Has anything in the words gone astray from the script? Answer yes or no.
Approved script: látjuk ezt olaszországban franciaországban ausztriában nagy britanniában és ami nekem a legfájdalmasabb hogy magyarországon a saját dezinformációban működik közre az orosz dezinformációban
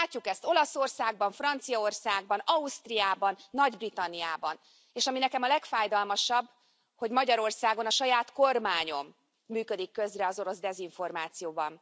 yes